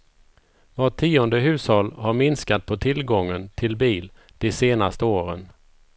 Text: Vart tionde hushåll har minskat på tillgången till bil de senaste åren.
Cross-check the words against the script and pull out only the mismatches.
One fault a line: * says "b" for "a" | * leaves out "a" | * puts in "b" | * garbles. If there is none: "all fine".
all fine